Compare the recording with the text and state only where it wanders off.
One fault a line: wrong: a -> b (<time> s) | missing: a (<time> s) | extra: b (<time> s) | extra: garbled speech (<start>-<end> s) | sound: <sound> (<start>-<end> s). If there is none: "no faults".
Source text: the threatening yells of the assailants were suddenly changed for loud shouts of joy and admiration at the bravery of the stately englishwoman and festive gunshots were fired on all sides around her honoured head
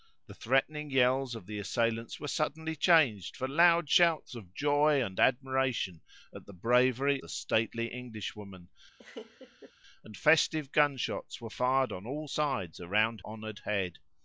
missing: of (7.2 s)
sound: laugh (9.0-9.7 s)
missing: her (13.2 s)